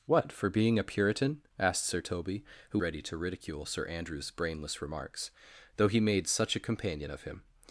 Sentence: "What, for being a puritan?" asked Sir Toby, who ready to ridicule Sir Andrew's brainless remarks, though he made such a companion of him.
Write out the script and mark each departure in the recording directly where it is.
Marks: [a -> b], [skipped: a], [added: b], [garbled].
"What, for being a puritan?" asked Sir Toby, who ready to ridicule Sir Andrew's brainless remarks, though he made such a companion of him.